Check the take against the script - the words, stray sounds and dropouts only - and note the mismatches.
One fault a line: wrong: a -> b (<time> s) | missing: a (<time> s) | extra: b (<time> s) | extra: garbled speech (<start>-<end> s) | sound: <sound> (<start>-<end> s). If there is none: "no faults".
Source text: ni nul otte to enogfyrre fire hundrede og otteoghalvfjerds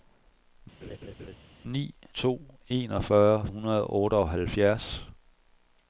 sound: laugh (0.8-1.4 s)
missing: nul otte (1.8 s)
missing: fire (3.5 s)